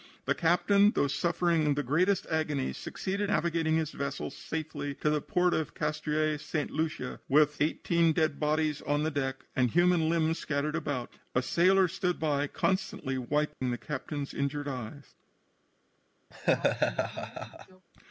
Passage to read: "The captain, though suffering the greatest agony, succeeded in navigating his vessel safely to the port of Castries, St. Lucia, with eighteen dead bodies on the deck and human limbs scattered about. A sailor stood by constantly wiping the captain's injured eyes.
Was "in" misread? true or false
true